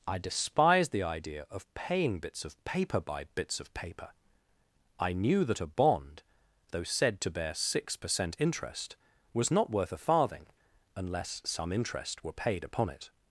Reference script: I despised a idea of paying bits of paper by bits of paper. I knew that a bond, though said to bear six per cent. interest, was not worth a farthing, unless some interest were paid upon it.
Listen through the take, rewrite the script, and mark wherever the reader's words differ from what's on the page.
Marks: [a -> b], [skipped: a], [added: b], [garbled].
I despised [a -> the] idea of paying bits of paper by bits of paper. I knew that a bond, though said to bear six per cent. interest, was not worth a farthing, unless some interest were paid upon it.